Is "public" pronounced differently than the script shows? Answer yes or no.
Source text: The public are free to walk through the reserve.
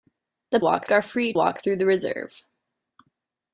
yes